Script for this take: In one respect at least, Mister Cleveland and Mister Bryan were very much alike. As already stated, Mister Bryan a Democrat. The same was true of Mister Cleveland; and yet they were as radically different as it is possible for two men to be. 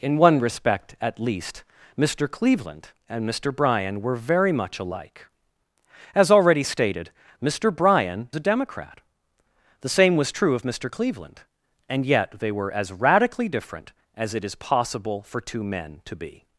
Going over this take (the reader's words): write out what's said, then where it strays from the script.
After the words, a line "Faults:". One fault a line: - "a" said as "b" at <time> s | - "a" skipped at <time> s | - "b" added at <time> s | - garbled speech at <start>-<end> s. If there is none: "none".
In one respect at least, Mister Cleveland and Mister Bryan were very much alike. As already stated, Mister Bryan a Democrat. The same was true of Mister Cleveland; and yet they were as radically different as it is possible for two men to be.
Faults:
none